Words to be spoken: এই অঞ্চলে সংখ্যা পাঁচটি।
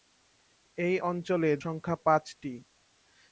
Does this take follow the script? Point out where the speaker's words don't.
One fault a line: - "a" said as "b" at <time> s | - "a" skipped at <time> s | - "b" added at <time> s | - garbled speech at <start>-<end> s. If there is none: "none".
none